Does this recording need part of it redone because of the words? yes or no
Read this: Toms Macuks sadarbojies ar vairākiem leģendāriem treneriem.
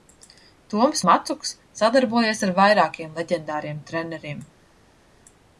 no